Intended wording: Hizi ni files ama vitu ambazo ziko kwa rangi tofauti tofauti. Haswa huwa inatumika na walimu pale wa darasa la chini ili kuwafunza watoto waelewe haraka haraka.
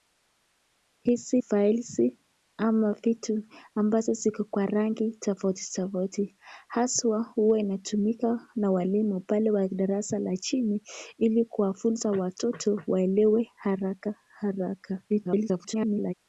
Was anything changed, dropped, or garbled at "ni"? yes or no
yes